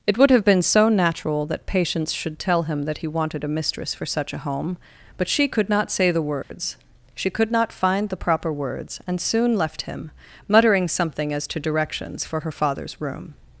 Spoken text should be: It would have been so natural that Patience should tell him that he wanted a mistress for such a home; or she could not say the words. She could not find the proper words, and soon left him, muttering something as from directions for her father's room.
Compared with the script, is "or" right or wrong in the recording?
wrong